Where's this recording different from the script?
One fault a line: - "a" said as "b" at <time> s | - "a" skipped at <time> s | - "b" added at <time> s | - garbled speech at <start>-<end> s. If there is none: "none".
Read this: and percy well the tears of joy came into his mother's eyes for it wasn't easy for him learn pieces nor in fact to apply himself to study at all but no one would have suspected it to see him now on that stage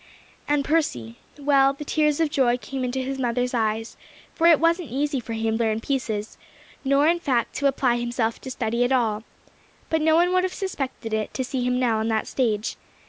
none